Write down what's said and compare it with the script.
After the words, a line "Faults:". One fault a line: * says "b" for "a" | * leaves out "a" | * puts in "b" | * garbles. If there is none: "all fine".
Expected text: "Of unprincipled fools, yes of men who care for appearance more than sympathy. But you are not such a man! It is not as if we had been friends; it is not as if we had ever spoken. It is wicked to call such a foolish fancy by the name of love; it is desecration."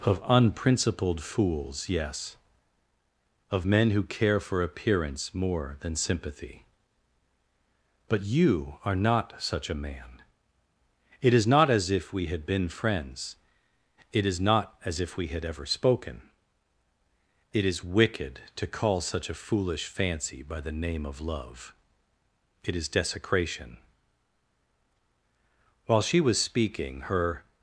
"Of unprincipled fools, yes of men who care for appearance more than sympathy. But you are not such a man! It is not as if we had been friends; it is not as if we had ever spoken. It is wicked to call such a foolish fancy by the name of love; it is desecration." While she was speaking, her
Faults:
* puts in "While she was speaking her"